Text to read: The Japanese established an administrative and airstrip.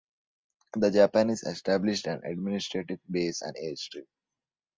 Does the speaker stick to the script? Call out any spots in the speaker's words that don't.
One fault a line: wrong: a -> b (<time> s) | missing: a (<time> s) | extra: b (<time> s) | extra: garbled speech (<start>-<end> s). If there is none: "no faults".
extra: base (3.1 s)